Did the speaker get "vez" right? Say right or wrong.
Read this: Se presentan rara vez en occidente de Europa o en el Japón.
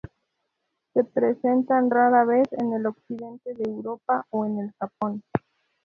right